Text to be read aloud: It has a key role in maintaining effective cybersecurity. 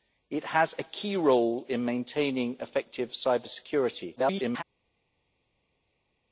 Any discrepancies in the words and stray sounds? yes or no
yes